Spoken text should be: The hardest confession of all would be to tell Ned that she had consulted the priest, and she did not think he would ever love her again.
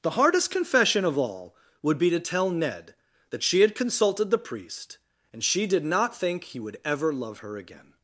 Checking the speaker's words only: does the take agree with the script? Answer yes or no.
yes